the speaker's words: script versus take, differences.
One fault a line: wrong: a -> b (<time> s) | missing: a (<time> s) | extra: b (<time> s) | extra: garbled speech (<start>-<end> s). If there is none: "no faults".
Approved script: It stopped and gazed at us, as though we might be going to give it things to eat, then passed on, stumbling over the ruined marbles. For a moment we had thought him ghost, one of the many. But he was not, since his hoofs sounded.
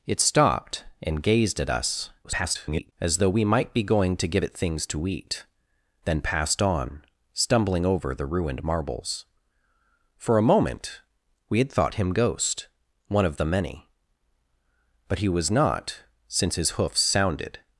extra: garbled speech (2.2-2.9 s)